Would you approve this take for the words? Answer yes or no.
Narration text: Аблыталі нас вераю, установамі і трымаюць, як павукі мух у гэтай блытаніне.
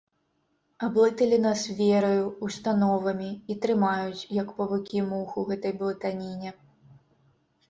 yes